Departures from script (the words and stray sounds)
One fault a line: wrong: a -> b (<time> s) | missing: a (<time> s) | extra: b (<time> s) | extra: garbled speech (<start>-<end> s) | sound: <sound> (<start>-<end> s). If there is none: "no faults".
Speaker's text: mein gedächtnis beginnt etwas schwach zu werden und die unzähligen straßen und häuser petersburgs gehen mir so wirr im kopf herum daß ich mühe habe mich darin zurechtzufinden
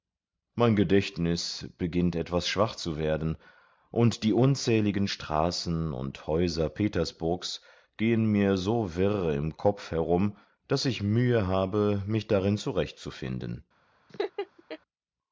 sound: laugh (14.1-14.8 s)